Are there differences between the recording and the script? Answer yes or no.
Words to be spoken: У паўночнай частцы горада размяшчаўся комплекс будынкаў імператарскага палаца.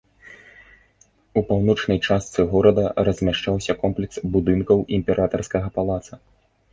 no